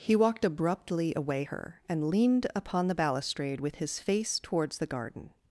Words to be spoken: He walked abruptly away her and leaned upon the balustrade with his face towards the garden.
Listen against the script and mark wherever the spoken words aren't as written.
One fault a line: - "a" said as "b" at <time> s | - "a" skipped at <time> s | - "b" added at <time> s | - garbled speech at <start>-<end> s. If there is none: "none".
none